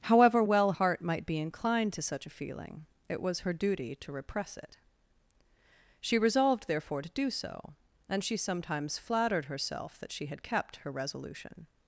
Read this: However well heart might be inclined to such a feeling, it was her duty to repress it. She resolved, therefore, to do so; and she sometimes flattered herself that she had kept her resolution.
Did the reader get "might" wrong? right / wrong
right